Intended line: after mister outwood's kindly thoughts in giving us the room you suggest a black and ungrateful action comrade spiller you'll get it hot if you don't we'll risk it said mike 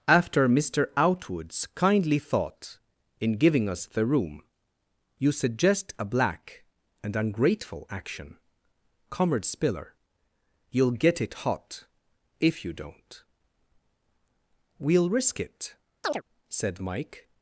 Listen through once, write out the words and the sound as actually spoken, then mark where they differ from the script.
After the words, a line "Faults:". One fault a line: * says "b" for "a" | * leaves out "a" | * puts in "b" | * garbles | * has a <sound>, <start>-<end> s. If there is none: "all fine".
after mister outwood's kindly thought in giving us the room you suggest a black and ungrateful action comrade spiller you'll get it hot if you don't we'll risk it said mike
Faults:
* says "thought" for "thoughts"
* has a chirp, 16.0-16.2 s